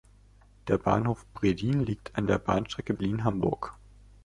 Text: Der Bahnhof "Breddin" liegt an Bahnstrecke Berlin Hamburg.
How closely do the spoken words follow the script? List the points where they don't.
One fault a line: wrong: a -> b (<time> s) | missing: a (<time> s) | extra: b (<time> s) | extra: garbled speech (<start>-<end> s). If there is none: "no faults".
extra: der (2.3 s)